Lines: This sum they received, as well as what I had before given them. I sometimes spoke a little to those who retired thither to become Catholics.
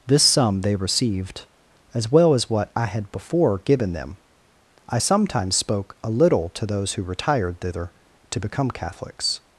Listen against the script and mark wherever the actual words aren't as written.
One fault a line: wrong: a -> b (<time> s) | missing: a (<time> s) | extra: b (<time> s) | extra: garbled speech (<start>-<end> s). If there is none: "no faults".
no faults